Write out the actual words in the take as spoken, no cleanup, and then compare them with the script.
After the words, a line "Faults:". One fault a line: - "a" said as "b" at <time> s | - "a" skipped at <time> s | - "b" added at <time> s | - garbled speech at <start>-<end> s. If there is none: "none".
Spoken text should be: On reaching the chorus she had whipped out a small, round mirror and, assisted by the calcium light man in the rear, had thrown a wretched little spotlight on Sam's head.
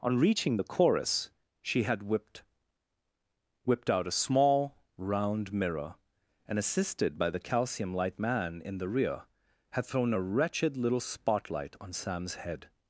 On reaching the chorus she had whipped whipped out a small, round mirror and, assisted by the calcium light man in the rear, had thrown a wretched little spotlight on Sam's head.
Faults:
- "whipped" added at 3.6 s